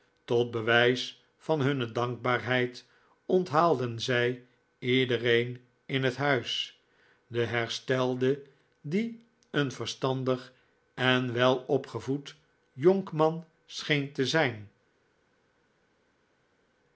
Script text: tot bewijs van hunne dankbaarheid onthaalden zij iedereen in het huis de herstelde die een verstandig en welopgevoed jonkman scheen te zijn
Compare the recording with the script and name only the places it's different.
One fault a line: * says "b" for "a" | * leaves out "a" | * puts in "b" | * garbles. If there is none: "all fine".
all fine